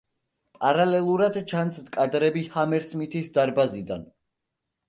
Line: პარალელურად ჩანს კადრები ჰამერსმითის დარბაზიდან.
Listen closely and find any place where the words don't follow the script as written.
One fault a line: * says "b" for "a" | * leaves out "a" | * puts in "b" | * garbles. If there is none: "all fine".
all fine